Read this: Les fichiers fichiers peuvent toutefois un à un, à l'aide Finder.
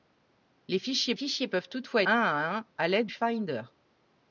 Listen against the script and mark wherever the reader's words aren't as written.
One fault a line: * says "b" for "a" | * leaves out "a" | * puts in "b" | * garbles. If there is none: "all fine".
all fine